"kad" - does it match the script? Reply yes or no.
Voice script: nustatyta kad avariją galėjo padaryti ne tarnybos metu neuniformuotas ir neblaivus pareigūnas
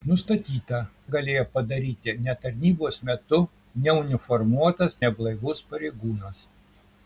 no